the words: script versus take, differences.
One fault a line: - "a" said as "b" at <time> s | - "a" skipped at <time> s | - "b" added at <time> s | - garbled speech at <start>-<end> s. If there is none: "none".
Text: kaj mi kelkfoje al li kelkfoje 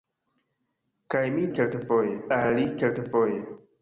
none